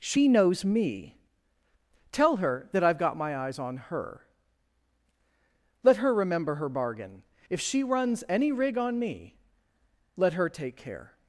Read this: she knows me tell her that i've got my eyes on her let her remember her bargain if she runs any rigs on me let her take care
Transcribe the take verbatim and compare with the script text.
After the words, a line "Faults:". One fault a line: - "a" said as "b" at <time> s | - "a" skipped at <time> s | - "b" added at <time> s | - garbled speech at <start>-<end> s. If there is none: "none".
she knows me tell her that i've got my eyes on her let her remember her bargain if she runs any rig on me let her take care
Faults:
- "rigs" said as "rig" at 8.5 s